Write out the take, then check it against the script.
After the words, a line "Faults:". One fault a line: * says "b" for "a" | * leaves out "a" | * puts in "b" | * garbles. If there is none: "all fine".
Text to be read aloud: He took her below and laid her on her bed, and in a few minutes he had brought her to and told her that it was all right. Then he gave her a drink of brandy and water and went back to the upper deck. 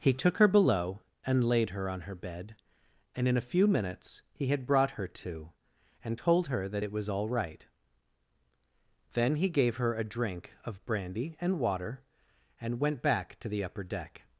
He took her below and laid her on her bed, and in a few minutes he had brought her to and told her that it was all right. Then he gave her a drink of brandy and water and went back to the upper deck.
Faults:
all fine